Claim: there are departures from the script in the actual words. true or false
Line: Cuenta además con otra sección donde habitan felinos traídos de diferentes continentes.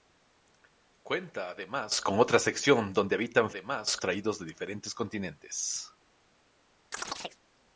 true